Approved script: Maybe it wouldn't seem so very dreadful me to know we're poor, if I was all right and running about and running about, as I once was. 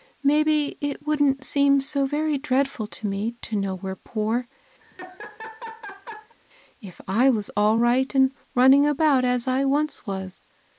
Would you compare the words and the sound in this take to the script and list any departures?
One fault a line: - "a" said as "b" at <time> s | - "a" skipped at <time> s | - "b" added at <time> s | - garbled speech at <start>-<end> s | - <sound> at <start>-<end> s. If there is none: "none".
- "to" added at 2.9 s
- laugh at 4.8-6.3 s
- "and running about" skipped at 9.2 s